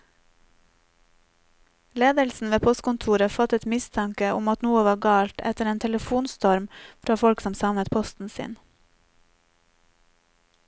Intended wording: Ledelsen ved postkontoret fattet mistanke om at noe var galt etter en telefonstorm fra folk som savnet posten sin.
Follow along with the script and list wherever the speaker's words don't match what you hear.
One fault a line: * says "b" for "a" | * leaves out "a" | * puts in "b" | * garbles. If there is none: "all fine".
all fine